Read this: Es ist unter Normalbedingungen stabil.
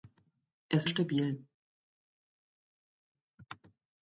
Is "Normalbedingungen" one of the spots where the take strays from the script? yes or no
yes